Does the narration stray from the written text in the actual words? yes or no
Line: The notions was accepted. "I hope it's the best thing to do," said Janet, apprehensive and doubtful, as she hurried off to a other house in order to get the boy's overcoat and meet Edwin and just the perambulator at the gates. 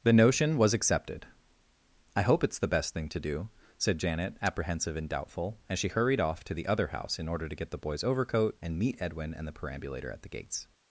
yes